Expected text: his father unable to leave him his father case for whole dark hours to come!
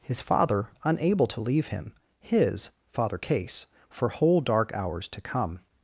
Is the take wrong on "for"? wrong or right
right